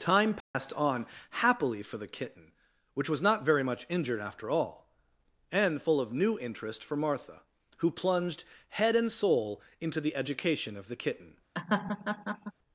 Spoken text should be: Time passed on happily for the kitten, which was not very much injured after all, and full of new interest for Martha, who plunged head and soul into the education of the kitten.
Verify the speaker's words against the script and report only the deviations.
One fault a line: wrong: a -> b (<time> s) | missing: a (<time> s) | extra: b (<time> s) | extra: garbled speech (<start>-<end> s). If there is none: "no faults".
no faults